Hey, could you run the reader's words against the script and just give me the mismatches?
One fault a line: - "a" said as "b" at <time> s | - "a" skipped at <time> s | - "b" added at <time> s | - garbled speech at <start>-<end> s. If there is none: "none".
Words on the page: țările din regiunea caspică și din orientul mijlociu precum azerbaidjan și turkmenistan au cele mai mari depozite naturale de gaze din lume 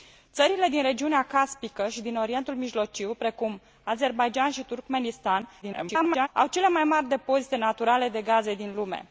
- garbled speech at 5.6-6.3 s